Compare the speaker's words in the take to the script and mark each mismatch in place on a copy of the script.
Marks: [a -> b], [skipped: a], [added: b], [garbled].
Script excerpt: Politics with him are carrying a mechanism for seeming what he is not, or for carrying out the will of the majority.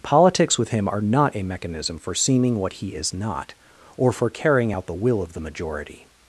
Politics with him are [carrying -> not] a mechanism for seeming what he is not, or for carrying out the will of the majority.